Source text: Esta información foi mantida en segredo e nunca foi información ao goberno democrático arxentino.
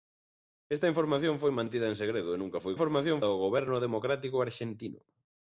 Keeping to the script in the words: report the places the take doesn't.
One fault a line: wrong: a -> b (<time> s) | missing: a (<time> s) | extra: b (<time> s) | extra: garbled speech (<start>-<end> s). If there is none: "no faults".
no faults